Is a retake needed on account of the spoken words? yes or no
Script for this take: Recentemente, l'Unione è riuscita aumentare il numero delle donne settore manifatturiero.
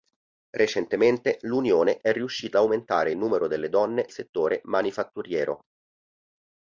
no